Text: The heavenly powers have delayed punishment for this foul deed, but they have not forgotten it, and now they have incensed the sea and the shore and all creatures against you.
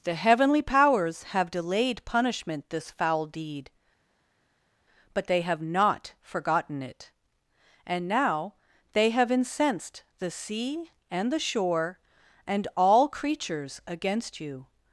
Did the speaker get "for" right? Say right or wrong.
wrong